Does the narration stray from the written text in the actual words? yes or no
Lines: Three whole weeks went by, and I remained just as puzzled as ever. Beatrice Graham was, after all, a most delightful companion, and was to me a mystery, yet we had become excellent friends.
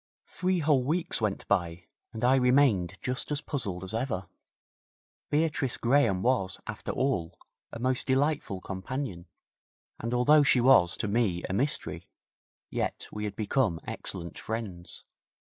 yes